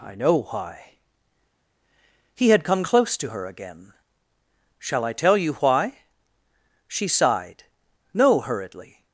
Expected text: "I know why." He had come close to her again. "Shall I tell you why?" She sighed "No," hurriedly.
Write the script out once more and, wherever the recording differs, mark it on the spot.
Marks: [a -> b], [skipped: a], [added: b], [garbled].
"I know why." He had come close to her again. "Shall I tell you why?" She sighed "No," hurriedly.